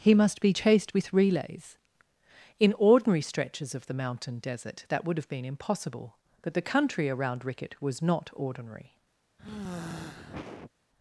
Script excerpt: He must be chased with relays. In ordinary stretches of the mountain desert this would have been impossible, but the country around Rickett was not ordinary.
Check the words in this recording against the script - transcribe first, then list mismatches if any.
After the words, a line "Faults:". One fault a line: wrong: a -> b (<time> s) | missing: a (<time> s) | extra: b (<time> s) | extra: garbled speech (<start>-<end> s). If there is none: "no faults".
He must be chased with relays. In ordinary stretches of the mountain desert that would have been impossible, but the country around Rickett was not ordinary.
Faults:
wrong: this -> that (4.9 s)